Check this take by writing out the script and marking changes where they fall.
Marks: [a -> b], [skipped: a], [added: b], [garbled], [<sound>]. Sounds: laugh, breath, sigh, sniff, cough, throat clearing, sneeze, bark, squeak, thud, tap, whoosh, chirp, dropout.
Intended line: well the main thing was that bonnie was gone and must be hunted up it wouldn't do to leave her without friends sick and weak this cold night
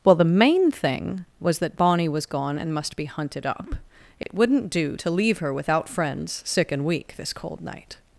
well the main thing was that bonnie was gone and must be hunted up it [dropout] wouldn't do to leave her without friends sick and weak this cold night